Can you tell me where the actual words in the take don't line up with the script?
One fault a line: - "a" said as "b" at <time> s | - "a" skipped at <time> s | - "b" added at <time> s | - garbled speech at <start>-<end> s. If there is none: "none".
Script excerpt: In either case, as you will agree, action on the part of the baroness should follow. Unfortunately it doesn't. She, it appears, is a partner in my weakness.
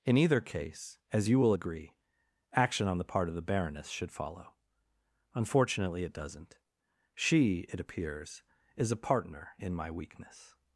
none